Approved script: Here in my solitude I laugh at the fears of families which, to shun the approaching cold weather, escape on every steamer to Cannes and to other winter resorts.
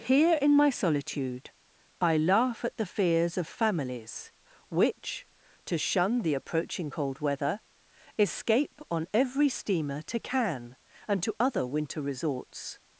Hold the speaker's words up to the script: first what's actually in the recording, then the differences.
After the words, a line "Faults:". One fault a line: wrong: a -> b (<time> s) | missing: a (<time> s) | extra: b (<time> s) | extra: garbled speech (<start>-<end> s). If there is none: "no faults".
Here in my solitude I laugh at the fears of families which, to shun the approaching cold weather, escape on every steamer to Cannes and to other winter resorts.
Faults:
no faults